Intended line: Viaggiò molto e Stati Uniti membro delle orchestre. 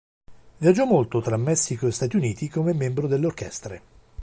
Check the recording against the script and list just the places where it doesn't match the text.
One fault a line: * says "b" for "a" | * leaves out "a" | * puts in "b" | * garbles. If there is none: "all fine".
* puts in "tra Messico"
* puts in "come"